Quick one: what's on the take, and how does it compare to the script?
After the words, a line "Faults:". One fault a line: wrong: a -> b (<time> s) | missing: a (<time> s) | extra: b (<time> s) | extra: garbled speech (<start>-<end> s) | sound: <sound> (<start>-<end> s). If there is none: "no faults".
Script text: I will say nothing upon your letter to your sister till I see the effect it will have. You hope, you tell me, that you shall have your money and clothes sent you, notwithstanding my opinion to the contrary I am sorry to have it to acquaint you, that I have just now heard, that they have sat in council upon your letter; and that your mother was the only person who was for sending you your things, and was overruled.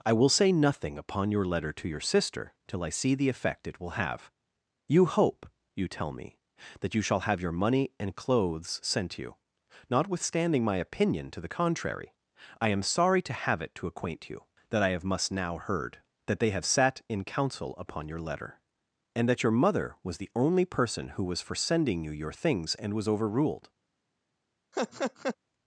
I will say nothing upon your letter to your sister till I see the effect it will have. You hope, you tell me, that you shall have your money and clothes sent you, notwithstanding my opinion to the contrary I am sorry to have it to acquaint you, that I have must now heard, that they have sat in council upon your letter; and that your mother was the only person who was for sending you your things, and was overruled.
Faults:
wrong: just -> must (15.0 s)
sound: laugh (24.7-25.4 s)